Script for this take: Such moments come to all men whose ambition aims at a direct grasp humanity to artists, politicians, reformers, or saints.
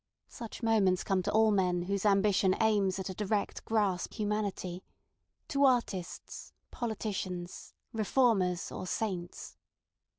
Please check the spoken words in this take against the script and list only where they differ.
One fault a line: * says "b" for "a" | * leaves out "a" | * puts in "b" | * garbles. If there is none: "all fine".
all fine